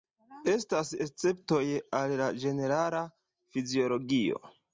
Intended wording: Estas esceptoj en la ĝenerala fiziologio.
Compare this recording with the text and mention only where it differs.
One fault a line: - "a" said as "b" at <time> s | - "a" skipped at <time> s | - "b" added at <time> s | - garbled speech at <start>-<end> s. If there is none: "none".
- "en" said as "al" at 2.0 s